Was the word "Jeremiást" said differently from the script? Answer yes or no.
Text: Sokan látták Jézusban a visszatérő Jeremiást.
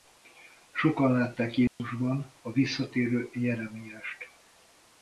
no